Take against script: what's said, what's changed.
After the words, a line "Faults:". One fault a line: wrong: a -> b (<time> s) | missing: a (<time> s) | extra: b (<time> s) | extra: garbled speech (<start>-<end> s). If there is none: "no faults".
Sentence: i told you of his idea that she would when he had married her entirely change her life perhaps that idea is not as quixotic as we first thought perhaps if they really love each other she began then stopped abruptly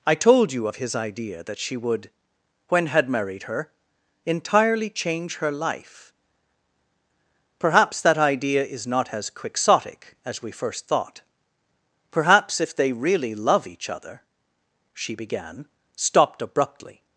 i told you of his idea that she would when had married her entirely change her life perhaps that idea is not as quixotic as we first thought perhaps if they really love each other she began stopped abruptly
Faults:
missing: he (2.9 s)
missing: then (15.7 s)